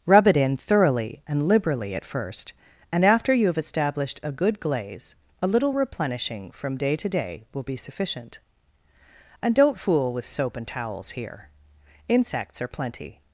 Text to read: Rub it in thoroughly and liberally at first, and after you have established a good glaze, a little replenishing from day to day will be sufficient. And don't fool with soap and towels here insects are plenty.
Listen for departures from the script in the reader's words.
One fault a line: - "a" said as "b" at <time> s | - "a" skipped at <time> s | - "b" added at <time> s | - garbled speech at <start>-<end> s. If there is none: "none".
none